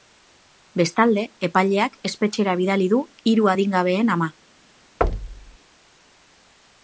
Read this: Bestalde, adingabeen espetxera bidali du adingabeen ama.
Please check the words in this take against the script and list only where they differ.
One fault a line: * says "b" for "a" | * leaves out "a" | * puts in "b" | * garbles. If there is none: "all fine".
* says "epaileak" for "adingabeen"
* puts in "hiru"